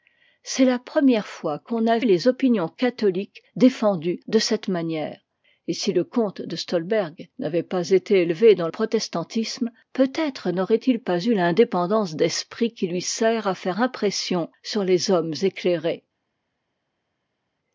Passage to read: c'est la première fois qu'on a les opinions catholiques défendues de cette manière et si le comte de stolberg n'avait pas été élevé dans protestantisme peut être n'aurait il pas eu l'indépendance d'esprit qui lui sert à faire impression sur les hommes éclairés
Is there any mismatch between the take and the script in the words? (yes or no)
no